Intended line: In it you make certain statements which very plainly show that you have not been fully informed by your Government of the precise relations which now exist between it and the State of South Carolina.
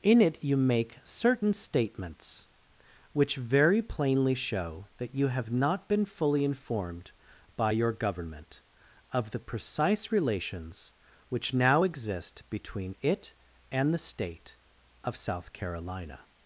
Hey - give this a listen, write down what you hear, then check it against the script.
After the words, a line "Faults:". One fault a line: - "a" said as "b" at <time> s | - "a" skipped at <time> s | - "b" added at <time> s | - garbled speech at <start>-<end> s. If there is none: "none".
In it you make certain statements which very plainly show that you have not been fully informed by your Government of the precise relations which now exist between it and the State of South Carolina.
Faults:
none